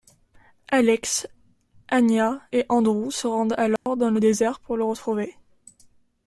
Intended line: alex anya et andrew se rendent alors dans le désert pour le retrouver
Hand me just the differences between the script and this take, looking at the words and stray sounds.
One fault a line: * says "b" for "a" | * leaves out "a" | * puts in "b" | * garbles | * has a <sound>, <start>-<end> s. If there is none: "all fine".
* has a dropout, 3.8-3.9 s